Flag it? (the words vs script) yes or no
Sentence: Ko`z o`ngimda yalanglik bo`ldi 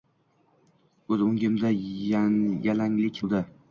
no